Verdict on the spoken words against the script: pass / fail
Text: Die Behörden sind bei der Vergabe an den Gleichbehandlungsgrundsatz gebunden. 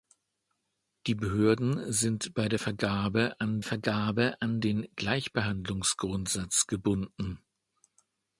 fail